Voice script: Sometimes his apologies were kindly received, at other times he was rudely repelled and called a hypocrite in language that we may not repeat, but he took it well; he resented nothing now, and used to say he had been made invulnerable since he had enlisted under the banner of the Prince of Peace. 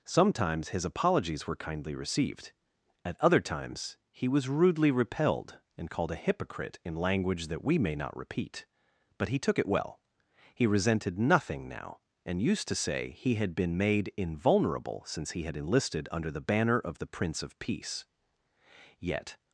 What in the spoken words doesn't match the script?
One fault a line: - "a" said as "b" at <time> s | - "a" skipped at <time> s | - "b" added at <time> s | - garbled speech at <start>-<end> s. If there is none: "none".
- "Yet" added at 19.0 s